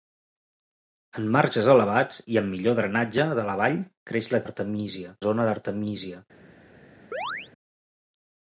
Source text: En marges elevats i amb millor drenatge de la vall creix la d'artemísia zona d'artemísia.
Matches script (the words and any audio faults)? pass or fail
fail